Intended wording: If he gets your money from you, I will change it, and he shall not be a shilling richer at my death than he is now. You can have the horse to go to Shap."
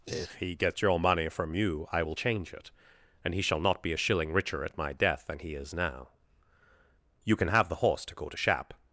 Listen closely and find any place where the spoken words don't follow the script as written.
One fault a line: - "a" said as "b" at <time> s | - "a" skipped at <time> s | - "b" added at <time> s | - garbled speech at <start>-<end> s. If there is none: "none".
none